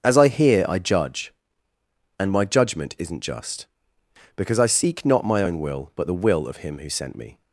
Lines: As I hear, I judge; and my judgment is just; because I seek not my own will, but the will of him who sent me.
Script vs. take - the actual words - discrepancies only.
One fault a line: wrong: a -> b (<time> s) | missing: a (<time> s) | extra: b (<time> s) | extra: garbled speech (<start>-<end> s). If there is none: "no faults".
wrong: is -> isn't (3.0 s)